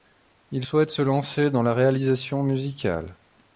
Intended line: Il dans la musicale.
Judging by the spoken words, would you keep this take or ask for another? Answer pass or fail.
fail